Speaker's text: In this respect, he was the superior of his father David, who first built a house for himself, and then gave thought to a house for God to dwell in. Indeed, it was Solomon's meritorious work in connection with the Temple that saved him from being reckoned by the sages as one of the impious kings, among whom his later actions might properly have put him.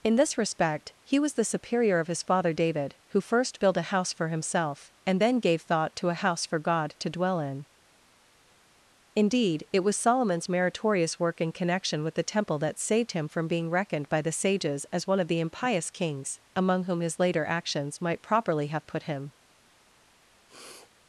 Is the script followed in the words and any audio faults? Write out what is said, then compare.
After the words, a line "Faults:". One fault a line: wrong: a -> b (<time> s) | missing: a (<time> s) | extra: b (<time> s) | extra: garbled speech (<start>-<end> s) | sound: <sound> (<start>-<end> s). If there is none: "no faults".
In this respect, he was the superior of his father David, who first built a house for himself, and then gave thought to a house for God to dwell in. Indeed, it was Solomon's meritorious work in connection with the Temple that saved him from being reckoned by the sages as one of the impious kings, among whom his later actions might properly have put him.
Faults:
sound: sniff (20.5-20.9 s)